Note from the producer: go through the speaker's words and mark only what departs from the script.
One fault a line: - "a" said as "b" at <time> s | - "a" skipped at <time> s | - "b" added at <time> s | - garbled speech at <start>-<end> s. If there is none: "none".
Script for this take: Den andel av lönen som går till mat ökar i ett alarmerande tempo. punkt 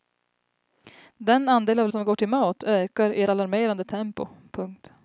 - "lönen" skipped at 1.9 s
- "ett" skipped at 3.2 s